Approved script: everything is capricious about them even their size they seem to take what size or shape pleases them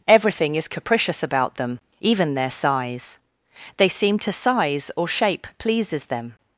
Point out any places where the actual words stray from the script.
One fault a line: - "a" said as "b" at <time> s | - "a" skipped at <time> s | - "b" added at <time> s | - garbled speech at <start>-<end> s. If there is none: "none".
- "take what" skipped at 4.3 s